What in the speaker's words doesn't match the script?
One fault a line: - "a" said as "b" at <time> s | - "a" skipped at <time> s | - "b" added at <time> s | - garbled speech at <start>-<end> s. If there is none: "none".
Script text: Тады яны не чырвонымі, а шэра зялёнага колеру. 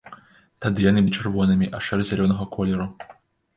none